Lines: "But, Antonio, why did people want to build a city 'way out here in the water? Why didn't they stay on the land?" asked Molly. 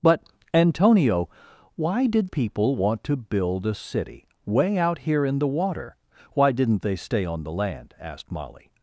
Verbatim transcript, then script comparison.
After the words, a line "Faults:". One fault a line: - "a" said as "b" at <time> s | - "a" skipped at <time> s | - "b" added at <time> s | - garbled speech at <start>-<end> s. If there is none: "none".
"But, Antonio, why did people want to build a city 'way out here in the water? Why didn't they stay on the land?" asked Molly.
Faults:
none